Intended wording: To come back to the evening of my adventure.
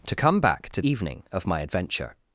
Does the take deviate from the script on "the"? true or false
true